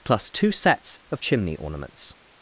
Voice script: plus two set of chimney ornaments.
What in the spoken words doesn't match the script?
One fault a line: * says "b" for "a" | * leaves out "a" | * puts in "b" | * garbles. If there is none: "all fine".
* says "sets" for "set"